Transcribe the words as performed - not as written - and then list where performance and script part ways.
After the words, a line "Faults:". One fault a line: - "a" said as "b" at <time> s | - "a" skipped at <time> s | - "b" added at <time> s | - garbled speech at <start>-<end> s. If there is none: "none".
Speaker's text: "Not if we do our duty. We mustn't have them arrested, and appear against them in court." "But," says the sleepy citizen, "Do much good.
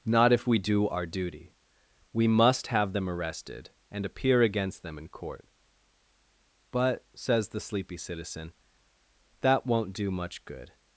"Not if we do our duty. We must have them arrested, and appear against them in court." "But," says the sleepy citizen, "That won't do much good.
Faults:
- "mustn't" said as "must" at 2.3 s
- "That won't" added at 9.4 s